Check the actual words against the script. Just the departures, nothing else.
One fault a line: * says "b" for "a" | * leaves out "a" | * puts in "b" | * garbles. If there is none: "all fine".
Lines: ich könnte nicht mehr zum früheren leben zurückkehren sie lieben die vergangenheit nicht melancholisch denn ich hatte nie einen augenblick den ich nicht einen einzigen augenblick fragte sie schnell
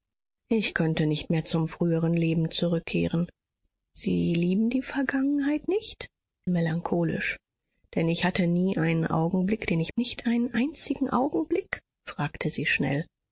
all fine